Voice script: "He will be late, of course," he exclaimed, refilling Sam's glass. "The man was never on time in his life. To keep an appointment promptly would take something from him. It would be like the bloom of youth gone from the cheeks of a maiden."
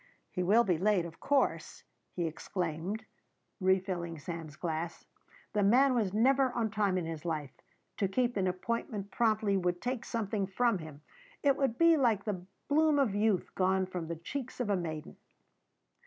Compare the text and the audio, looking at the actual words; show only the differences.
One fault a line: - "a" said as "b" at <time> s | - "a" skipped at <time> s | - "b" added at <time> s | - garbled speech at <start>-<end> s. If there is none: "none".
none